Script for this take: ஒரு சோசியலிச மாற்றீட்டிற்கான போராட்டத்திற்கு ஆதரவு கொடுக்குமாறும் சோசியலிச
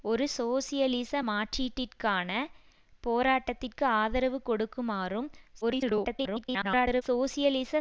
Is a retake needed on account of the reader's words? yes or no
yes